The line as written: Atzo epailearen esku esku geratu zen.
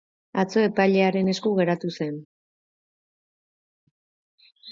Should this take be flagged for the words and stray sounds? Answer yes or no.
yes